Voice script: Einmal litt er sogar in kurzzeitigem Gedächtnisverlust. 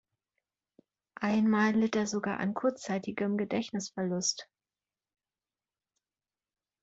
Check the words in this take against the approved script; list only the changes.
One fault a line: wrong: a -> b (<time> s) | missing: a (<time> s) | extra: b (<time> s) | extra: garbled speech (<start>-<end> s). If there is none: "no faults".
wrong: in -> an (2.4 s)